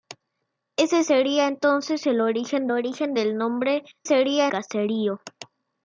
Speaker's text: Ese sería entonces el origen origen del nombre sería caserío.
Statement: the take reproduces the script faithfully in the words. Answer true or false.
true